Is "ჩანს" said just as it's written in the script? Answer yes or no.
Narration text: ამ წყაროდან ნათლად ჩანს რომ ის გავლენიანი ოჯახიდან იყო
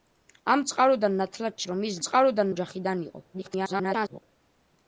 no